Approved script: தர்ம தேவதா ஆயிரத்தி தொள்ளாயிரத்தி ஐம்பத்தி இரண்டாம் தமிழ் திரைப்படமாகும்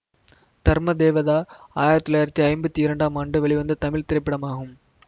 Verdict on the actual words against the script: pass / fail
fail